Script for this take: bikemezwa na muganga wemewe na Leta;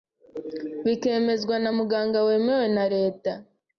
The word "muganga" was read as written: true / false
true